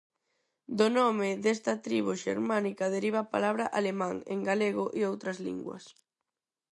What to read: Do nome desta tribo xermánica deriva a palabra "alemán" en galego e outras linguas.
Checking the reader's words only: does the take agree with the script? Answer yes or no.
yes